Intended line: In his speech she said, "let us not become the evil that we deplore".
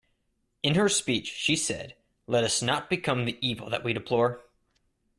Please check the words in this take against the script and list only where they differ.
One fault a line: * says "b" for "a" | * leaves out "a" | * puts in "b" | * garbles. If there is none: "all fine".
* says "her" for "his"